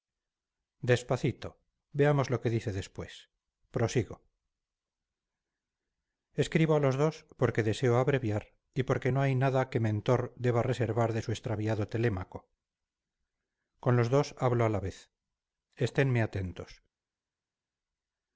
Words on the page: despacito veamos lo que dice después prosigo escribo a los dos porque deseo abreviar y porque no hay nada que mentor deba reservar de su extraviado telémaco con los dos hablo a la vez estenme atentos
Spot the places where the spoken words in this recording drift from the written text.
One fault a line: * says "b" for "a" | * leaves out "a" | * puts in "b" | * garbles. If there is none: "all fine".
all fine